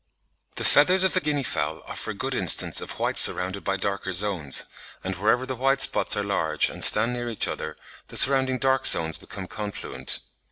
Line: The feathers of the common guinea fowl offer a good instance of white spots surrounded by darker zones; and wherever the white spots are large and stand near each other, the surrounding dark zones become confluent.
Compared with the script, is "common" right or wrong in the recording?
wrong